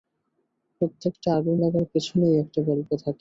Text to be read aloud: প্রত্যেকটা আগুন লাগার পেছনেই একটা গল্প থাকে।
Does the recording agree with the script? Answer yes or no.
yes